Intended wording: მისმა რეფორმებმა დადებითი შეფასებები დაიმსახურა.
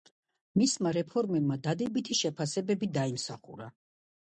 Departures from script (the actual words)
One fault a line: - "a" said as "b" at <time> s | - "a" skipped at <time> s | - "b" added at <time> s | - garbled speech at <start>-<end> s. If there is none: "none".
none